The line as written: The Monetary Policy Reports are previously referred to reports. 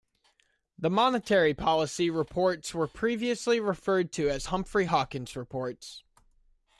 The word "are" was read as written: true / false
false